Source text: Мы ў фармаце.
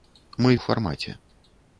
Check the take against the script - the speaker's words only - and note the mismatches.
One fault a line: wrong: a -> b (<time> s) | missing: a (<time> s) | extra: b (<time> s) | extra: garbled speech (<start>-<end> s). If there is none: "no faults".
no faults